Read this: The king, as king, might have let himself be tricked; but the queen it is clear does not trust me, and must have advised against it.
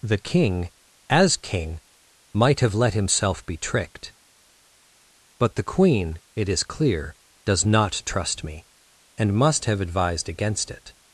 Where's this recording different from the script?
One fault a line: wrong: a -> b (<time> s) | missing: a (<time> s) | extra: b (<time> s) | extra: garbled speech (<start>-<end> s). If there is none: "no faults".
no faults